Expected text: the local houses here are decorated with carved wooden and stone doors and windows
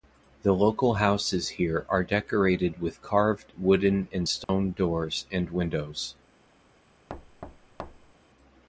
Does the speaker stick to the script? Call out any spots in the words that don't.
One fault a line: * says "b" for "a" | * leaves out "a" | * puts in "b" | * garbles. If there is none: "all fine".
all fine